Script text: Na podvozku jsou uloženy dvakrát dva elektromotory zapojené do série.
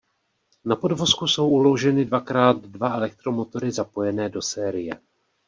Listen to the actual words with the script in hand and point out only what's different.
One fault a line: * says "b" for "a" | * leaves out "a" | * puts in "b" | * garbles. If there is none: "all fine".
all fine